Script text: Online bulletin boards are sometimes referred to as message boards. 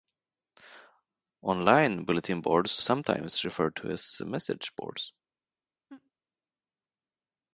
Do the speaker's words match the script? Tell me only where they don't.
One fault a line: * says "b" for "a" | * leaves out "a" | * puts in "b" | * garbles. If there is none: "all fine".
* leaves out "are"